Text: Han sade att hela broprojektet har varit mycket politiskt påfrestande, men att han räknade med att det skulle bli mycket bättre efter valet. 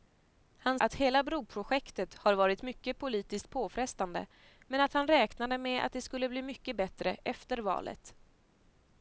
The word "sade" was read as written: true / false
false